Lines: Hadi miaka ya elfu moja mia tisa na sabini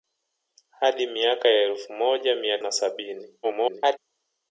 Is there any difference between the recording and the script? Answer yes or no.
yes